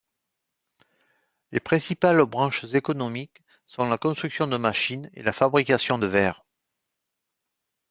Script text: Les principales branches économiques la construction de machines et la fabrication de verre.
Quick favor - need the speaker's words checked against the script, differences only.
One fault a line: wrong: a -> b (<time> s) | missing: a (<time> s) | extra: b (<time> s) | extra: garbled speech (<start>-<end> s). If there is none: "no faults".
extra: sont (3.7 s)